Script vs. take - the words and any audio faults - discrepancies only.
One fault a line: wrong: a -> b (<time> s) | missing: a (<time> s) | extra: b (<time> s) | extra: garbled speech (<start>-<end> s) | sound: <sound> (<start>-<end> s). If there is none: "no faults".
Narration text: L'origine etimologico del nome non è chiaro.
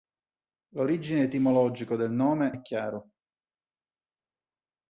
missing: non (2.5 s)